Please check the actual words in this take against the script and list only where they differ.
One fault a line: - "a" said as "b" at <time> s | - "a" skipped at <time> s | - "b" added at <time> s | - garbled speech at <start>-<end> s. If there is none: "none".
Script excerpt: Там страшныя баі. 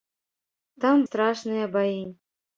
none